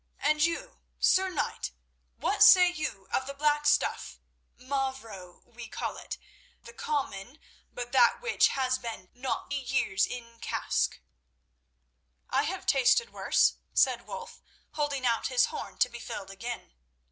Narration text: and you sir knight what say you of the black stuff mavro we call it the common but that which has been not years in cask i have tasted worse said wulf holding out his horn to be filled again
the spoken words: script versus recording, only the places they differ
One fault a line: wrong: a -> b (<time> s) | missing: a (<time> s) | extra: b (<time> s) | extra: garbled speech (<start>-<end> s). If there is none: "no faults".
no faults